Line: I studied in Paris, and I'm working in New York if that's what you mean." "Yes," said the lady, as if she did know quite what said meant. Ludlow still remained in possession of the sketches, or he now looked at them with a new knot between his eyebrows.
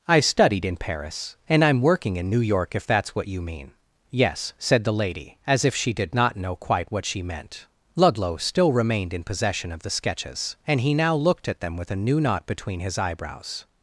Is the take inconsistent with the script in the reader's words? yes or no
yes